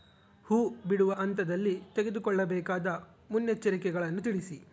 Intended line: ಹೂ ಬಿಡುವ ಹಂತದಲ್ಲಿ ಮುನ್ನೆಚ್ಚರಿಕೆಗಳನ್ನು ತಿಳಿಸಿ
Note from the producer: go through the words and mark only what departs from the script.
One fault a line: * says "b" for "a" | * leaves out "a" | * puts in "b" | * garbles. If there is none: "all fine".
* puts in "ತೆಗೆದುಕೊಳ್ಳಬೇಕಾದ"